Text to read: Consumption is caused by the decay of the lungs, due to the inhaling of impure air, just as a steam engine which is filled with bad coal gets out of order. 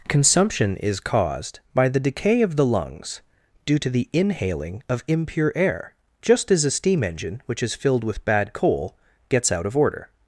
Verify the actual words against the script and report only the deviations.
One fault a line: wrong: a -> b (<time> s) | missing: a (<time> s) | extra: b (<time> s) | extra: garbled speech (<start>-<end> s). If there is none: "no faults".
no faults